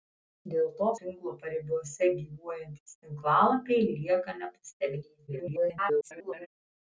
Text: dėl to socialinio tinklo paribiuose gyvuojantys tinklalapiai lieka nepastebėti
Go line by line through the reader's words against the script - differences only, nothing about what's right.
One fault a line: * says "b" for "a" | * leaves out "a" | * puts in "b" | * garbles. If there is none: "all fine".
* leaves out "socialinio"
* garbles